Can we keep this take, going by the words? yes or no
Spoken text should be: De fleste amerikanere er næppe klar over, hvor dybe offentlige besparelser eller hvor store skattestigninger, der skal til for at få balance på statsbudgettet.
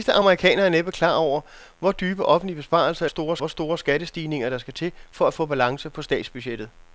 no